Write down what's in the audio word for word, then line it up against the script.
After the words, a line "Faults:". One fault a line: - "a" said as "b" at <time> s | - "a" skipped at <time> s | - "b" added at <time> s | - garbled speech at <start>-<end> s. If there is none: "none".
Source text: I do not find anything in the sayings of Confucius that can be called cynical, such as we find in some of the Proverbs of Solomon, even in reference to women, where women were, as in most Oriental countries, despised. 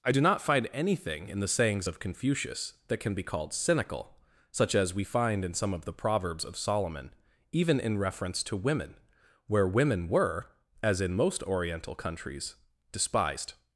I do not find anything in the sayings of Confucius that can be called cynical, such as we find in some of the Proverbs of Solomon, even in reference to women, where women were, as in most Oriental countries, despised.
Faults:
none